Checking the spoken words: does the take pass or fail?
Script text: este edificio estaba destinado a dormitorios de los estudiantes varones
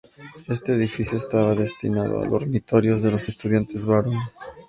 pass